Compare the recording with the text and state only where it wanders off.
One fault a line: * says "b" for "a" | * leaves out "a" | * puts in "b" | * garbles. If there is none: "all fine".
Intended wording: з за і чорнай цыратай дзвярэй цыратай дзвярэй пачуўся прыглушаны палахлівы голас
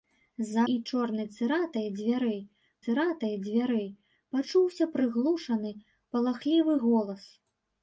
all fine